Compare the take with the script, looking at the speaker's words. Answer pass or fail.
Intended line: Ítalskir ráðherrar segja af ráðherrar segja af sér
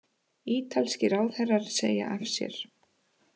fail